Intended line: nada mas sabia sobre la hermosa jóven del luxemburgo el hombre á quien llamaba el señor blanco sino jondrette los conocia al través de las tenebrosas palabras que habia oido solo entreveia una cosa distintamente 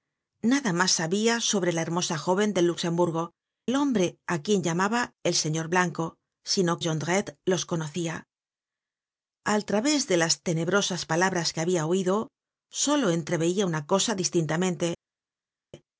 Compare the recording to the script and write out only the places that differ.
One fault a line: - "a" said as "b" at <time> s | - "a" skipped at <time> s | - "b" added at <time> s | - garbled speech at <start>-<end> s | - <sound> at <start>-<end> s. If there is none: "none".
none